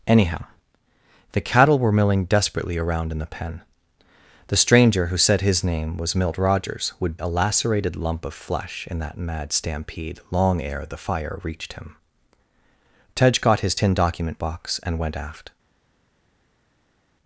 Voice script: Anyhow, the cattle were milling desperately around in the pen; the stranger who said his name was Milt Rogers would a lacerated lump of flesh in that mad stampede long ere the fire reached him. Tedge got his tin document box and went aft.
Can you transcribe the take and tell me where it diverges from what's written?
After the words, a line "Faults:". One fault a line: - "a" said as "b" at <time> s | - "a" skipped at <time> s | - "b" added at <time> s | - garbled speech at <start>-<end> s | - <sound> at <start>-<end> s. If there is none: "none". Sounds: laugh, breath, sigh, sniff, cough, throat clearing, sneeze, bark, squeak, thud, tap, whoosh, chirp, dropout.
Anyhow, the cattle were milling desperately around in the pen; the stranger who said his name was Milt Rogers would a lacerated lump of flesh in that mad stampede long ere the fire reached him. Tedge got his tin document box and went aft.
Faults:
none